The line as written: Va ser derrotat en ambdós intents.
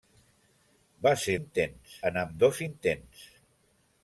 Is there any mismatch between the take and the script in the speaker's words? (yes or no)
yes